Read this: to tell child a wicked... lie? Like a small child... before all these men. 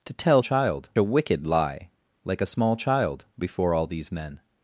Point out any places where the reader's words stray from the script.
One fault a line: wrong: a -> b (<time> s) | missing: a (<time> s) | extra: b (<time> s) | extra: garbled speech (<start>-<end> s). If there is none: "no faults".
no faults